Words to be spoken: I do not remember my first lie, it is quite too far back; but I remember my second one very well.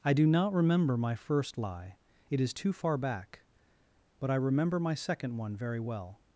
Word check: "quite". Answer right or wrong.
wrong